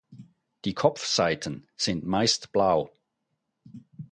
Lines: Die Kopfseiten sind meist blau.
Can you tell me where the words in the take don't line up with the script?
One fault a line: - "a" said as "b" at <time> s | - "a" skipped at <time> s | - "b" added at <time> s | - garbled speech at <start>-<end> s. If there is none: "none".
none